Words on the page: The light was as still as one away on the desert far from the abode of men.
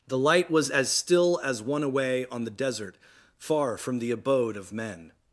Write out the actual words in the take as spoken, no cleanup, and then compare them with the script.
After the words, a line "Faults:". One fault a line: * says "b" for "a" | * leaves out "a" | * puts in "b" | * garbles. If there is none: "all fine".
The light was as still as one away on the desert far from the abode of men.
Faults:
all fine